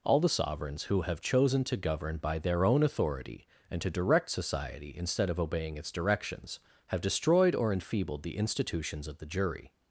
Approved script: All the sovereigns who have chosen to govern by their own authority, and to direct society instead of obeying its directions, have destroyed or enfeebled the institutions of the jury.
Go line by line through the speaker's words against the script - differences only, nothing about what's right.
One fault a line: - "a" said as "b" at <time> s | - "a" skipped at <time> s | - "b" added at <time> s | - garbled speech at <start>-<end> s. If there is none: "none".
none